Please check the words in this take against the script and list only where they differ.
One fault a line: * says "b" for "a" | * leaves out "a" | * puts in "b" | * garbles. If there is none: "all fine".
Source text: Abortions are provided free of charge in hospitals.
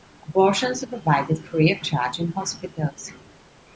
all fine